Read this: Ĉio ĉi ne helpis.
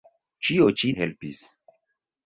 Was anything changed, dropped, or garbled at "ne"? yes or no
yes